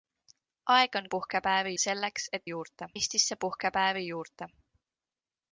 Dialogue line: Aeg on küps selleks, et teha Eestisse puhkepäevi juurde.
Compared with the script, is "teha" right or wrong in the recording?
wrong